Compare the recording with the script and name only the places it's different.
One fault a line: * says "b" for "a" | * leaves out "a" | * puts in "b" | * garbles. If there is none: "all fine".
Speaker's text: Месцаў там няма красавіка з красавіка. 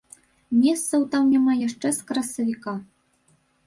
* says "яшчэ" for "красавіка"